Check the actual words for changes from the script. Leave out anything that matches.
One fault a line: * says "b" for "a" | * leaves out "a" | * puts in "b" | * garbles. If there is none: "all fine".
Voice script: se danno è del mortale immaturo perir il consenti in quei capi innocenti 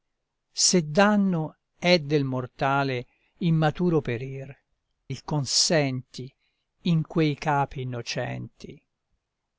all fine